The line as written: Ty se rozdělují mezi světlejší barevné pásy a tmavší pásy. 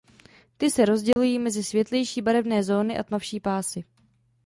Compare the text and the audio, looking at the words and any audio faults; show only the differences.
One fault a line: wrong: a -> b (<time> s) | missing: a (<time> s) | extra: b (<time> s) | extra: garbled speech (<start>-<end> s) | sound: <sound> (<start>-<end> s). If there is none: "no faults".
sound: dropout (1.1-1.2 s)
wrong: pásy -> zóny (2.6 s)